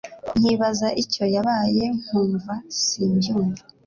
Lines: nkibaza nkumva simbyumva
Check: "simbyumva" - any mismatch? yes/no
no